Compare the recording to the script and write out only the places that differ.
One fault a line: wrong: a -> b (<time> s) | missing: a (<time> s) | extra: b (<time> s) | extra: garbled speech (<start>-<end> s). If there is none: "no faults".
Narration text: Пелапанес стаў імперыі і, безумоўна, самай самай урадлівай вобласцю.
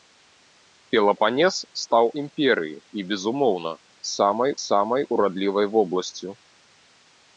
no faults